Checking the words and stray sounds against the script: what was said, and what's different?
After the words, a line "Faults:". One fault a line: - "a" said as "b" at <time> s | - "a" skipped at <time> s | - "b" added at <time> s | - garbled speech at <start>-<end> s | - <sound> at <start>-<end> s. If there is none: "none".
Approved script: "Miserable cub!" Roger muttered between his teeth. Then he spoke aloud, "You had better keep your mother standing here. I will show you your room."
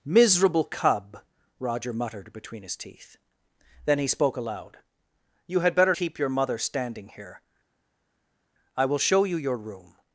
"Miserable cub!" Roger muttered between his teeth. Then he spoke aloud, "You had better keep your mother standing here. I will show you your room."
Faults:
none